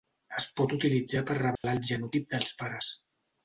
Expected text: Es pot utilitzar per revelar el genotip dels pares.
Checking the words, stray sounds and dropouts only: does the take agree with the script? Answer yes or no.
no